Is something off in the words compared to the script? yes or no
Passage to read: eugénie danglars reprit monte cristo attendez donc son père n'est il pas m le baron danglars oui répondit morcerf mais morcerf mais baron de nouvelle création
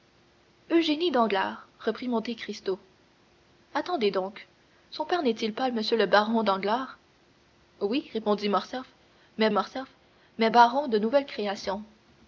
no